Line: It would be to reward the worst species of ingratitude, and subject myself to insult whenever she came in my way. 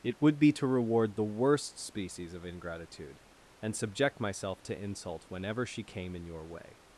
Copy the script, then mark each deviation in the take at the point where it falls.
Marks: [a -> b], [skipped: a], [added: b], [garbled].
It would be to reward the worst species of ingratitude, and subject myself to insult whenever she came in [my -> your] way.